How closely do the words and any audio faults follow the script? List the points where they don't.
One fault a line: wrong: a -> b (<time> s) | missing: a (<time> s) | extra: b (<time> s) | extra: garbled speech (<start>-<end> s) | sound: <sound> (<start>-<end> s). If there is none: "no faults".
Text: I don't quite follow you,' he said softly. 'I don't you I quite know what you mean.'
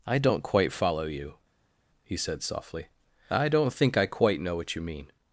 wrong: you -> think (3.7 s)